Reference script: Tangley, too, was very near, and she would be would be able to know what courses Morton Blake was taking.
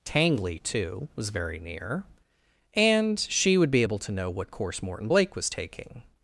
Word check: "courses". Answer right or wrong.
wrong